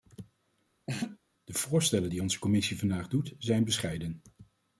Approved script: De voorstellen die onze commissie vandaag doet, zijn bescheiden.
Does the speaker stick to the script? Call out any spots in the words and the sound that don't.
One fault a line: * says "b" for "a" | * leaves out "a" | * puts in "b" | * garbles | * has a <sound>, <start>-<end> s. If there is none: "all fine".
* has a laugh, 0.9-1.2 s